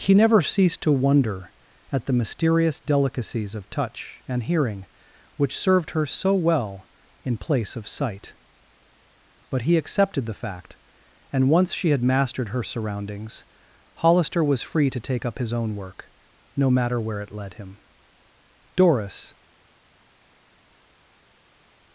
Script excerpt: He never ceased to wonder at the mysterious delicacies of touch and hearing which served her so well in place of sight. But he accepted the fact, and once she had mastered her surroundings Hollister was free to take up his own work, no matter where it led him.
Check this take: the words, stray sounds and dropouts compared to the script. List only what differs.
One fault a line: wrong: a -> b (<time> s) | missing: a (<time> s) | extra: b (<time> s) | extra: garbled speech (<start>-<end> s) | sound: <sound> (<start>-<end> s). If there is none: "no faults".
extra: Doris (18.8 s)